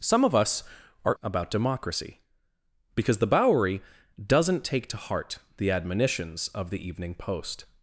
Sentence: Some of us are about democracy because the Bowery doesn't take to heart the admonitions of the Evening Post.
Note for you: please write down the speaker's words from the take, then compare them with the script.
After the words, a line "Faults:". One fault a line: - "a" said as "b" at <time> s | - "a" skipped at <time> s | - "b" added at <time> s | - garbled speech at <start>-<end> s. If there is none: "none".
Some of us are about democracy because the Bowery doesn't take to heart the admonitions of the Evening Post.
Faults:
none